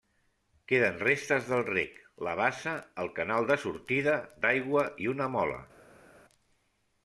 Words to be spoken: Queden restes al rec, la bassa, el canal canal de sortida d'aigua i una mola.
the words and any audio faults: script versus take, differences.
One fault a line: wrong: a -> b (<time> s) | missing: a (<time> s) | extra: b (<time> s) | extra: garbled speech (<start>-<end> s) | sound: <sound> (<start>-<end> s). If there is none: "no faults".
wrong: al -> del (1.5 s)
missing: canal (3.5 s)